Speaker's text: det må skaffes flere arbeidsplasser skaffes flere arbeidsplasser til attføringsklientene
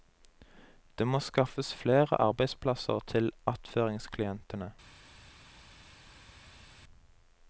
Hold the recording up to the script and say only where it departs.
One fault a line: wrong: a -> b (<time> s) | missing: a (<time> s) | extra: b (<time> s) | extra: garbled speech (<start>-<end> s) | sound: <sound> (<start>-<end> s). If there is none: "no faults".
missing: skaffes flere arbeidsplasser (3.0 s)